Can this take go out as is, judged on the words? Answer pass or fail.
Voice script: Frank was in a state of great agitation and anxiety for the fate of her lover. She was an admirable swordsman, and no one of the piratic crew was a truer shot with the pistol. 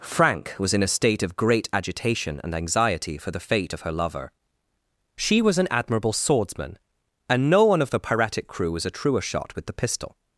pass